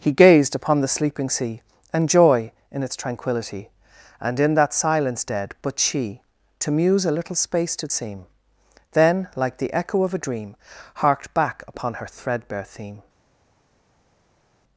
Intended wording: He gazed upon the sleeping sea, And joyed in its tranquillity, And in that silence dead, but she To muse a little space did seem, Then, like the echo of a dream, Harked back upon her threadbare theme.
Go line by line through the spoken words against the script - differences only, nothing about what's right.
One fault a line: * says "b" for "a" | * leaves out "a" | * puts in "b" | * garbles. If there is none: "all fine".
* says "joy" for "joyed"